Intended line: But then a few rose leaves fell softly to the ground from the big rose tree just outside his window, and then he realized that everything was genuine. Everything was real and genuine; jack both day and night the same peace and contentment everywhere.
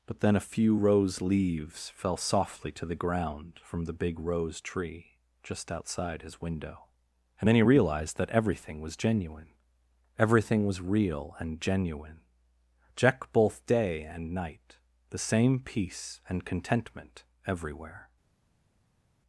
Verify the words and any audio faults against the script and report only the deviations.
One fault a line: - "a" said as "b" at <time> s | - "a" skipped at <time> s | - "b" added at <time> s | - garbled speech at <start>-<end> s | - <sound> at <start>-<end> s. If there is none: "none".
none